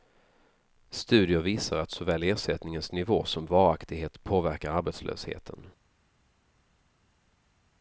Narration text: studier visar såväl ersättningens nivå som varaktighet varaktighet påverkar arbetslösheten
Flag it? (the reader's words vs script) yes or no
yes